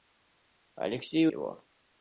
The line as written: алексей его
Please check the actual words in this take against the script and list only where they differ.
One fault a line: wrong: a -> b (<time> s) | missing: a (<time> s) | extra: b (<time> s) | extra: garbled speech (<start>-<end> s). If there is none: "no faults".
no faults